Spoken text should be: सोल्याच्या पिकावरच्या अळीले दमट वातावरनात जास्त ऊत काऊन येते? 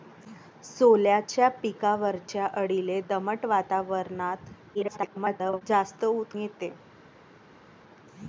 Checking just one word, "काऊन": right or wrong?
wrong